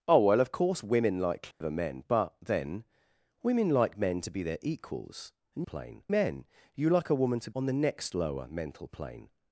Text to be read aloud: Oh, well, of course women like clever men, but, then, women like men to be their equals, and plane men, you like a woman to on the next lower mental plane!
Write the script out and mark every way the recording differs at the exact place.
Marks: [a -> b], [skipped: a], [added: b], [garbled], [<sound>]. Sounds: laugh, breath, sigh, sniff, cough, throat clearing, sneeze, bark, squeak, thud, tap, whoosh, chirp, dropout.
Oh, well, of course women like clever [dropout] men, but, then, women like men to be their equals, and plane men, you like a woman to on the next lower mental plane!